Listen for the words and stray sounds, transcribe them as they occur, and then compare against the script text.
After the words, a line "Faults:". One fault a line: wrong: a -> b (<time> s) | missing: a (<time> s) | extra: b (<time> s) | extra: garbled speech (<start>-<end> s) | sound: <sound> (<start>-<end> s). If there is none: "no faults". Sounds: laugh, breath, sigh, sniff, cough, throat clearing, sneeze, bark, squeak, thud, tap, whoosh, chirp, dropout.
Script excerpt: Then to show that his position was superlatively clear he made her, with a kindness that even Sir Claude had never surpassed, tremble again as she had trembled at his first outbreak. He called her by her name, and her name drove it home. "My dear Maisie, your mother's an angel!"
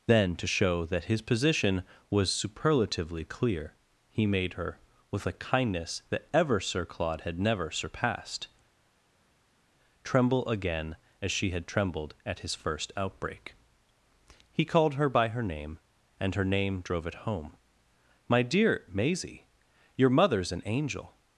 Then to show that his position was superlatively clear he made her, with a kindness that ever Sir Claude had never surpassed, tremble again as she had trembled at his first outbreak. He called her by her name, and her name drove it home. "My dear Maisie, your mother's an angel!"
Faults:
wrong: even -> ever (6.3 s)